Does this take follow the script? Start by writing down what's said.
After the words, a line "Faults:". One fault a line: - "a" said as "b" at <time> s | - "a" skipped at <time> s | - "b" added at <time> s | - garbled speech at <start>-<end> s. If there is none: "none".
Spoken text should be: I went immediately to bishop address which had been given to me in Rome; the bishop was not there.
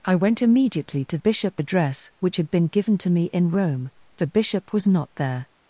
I went immediately to bishop address which had been given to me in Rome; the bishop was not there.
Faults:
none